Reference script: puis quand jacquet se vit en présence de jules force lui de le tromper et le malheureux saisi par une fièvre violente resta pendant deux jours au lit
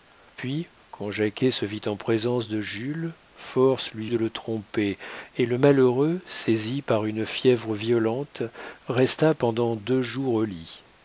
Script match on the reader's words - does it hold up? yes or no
yes